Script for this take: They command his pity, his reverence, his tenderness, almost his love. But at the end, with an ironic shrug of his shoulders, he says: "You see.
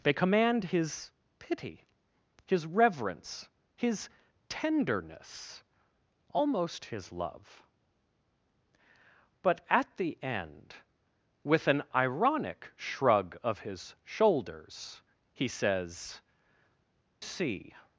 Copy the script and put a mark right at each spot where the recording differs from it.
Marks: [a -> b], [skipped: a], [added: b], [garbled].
They command his pity, his reverence, his tenderness, almost his love. But at the end, with an ironic shrug of his shoulders, he says: [skipped: "You] see.